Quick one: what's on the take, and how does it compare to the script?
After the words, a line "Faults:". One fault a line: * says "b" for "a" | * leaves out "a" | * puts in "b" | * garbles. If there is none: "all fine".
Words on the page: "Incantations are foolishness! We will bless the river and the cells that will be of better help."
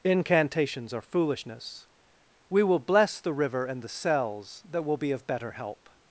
"Incantations are foolishness! We will bless the river and the cells that will be of better help."
Faults:
all fine